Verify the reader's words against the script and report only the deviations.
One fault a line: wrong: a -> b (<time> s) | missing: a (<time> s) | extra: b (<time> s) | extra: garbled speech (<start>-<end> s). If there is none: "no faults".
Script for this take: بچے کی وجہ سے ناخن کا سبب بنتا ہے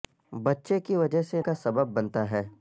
missing: ناخن (1.4 s)